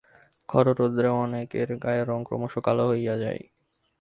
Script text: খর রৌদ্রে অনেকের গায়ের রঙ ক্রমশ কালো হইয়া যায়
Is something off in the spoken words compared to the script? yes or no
no